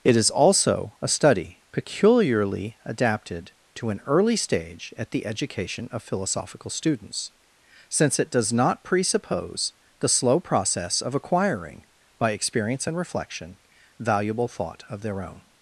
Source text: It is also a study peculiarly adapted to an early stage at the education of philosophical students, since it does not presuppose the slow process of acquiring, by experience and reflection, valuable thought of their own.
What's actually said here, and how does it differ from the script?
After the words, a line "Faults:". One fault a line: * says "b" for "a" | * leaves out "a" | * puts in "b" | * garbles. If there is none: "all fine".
It is also a study peculiarly adapted to an early stage at the education of philosophical students, since it does not presuppose the slow process of acquiring, by experience and reflection, valuable thought of their own.
Faults:
all fine